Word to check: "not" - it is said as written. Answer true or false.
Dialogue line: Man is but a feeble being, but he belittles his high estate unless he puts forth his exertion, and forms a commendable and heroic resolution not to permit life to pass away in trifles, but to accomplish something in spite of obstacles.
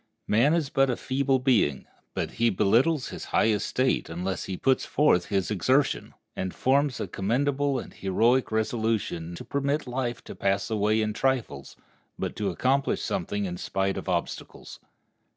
false